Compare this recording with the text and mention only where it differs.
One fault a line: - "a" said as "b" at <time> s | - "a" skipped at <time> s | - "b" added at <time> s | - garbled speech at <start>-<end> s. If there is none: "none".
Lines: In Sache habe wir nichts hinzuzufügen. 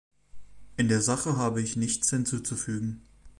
- "der" added at 0.9 s
- "wir" said as "ich" at 1.6 s